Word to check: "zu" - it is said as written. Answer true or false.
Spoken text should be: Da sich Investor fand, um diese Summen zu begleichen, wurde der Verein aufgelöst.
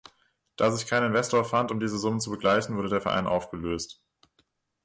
true